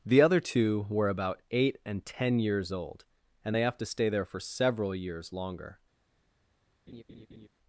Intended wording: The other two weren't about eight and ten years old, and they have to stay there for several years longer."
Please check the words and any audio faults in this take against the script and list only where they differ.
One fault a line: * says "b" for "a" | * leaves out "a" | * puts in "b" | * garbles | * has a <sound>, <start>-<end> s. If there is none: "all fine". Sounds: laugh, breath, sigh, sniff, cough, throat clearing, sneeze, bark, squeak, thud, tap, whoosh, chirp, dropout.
* says "were" for "weren't"
* has a laugh, 6.9-7.5 s